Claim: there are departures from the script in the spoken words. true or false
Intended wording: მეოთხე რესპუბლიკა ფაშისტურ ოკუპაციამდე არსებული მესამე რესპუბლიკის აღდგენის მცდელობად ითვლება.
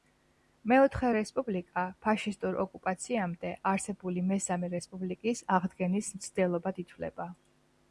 false